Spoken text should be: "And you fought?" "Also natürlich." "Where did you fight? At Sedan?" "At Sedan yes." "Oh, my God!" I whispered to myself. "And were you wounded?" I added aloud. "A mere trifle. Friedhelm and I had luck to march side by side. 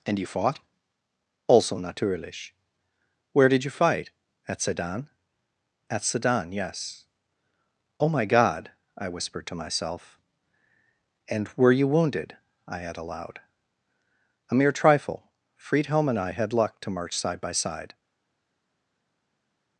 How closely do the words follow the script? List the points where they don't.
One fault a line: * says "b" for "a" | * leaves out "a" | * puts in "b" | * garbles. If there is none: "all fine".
* says "add" for "added"